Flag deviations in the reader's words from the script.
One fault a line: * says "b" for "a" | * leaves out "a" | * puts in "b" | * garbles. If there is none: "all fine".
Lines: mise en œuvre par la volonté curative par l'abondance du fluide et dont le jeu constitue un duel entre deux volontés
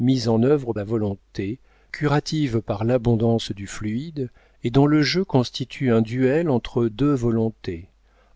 * leaves out "par"